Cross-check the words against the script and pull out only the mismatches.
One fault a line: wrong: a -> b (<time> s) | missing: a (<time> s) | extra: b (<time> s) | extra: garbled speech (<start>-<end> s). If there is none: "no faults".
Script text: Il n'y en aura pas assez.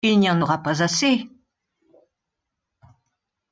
no faults